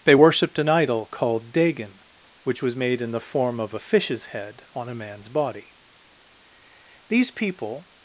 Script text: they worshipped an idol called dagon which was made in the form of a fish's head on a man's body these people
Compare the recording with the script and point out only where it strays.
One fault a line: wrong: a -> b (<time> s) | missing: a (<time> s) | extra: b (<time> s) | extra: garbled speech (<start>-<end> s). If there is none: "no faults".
no faults